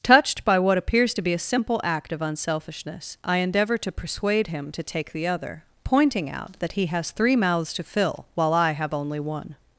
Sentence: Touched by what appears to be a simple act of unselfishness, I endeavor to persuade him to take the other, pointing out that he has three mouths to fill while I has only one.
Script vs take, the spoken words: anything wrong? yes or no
yes